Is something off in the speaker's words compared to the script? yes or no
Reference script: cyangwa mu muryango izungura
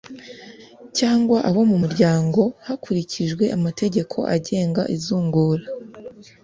yes